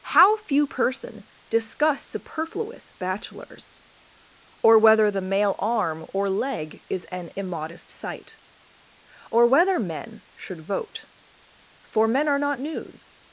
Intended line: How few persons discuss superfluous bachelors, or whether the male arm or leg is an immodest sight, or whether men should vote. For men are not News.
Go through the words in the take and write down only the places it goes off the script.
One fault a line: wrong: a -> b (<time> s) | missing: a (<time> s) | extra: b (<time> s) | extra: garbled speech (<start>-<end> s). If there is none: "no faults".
wrong: persons -> person (0.7 s)